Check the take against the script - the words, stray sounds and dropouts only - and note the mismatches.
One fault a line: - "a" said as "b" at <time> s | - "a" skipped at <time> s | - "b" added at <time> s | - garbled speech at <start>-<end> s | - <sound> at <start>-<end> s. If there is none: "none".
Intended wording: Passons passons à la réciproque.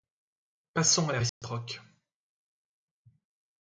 - "passons" skipped at 1.1 s
- dropout at 1.3-1.4 s